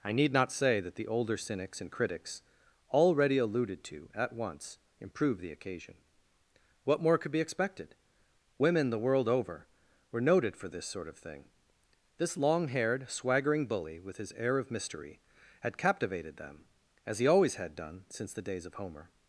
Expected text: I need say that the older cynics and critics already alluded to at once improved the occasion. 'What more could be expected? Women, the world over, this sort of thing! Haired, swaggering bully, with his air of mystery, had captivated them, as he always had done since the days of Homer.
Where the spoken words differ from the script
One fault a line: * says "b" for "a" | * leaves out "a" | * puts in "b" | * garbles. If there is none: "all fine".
* puts in "not"
* puts in "were noted for"
* puts in "This long"